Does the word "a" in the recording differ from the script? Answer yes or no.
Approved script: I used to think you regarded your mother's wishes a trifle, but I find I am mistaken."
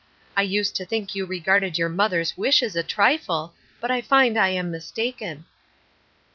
no